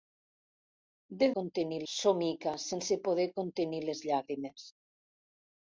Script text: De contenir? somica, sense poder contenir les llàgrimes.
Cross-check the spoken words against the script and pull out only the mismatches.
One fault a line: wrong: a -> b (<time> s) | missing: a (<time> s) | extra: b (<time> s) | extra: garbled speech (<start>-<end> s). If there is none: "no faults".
no faults